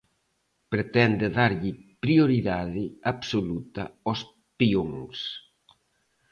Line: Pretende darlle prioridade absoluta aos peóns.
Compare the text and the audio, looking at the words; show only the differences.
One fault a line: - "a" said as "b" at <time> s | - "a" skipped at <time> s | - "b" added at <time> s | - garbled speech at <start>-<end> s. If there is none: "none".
none